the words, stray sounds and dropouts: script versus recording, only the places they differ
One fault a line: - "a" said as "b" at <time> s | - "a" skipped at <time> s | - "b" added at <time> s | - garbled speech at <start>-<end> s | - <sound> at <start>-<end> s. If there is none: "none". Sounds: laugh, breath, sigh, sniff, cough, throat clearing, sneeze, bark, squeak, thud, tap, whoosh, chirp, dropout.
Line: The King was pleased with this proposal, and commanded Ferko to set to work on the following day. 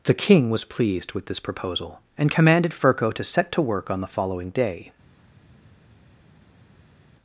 none